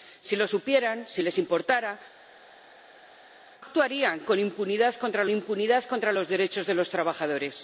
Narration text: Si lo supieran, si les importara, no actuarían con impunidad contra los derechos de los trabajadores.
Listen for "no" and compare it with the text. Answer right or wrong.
wrong